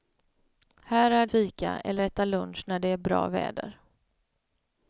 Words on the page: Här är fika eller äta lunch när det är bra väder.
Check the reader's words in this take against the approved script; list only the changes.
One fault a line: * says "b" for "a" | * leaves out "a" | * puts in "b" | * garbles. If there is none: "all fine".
all fine